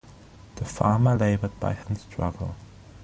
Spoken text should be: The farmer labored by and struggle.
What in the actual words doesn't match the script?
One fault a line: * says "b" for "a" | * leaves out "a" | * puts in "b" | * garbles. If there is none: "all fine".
all fine